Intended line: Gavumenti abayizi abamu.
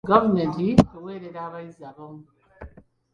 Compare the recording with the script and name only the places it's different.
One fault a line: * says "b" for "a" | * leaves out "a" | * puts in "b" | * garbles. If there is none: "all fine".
* puts in "eweerera"